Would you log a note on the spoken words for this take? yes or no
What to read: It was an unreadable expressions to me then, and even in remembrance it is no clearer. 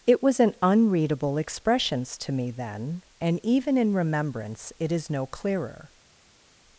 no